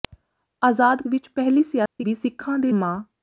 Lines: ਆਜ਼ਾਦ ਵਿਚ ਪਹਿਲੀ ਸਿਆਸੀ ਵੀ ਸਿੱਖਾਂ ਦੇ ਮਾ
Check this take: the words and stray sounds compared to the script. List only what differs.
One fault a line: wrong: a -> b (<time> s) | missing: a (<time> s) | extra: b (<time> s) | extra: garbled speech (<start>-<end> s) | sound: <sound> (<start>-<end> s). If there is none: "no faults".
sound: dropout (1.9-2.0 s)